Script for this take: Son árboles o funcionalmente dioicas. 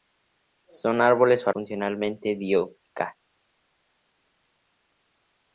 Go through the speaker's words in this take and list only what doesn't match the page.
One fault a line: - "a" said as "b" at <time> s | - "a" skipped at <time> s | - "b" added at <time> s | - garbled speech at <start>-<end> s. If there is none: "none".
none